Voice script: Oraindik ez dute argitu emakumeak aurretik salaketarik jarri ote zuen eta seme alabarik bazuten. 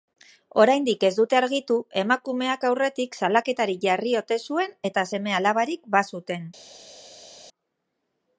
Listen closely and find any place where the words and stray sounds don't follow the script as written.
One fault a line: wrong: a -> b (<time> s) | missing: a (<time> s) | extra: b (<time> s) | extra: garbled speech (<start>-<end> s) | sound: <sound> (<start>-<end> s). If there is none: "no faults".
no faults